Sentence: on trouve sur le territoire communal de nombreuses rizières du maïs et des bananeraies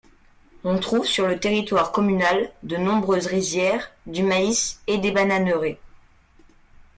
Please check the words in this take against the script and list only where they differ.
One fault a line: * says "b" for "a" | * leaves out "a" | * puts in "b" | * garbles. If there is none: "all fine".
all fine